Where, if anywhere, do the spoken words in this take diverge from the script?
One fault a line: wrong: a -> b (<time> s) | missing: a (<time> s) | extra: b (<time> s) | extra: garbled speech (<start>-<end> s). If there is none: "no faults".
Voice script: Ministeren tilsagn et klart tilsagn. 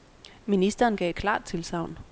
wrong: tilsagn -> gav (1.0 s)